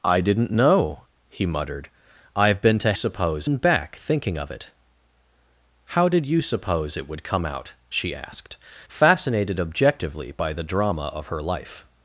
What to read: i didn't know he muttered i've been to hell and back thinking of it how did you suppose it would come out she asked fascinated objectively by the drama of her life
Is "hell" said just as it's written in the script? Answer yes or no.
no